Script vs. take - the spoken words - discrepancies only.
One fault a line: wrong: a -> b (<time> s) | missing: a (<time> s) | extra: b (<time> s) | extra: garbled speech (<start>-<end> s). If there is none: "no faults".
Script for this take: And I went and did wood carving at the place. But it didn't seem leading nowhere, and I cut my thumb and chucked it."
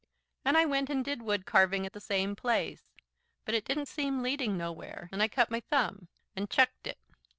extra: same (2.0 s)